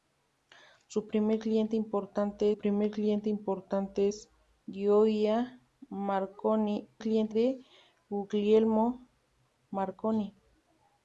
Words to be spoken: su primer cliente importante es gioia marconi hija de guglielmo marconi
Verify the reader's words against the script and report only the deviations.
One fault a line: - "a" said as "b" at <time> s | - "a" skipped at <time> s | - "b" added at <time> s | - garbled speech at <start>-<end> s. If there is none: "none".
- "primer cliente importante" added at 2.6 s
- "hija" said as "cliente" at 7.0 s